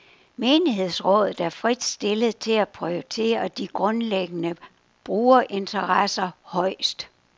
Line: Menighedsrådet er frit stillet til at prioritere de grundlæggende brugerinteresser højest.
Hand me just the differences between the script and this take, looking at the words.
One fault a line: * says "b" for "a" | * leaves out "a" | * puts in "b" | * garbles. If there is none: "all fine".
all fine